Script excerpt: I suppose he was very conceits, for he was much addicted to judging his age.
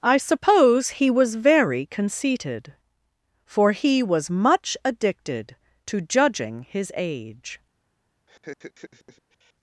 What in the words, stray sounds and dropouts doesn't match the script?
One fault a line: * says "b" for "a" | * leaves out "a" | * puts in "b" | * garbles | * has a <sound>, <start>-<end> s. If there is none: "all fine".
* says "conceited" for "conceits"
* has a laugh, 8.3-9.5 s